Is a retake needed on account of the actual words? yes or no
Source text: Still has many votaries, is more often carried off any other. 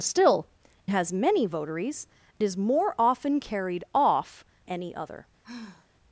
no